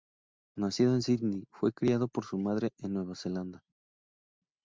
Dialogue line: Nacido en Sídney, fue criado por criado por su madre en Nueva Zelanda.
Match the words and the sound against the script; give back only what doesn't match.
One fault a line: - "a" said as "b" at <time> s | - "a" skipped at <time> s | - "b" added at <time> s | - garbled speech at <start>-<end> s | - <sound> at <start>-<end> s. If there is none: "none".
- "criado por" skipped at 2.2 s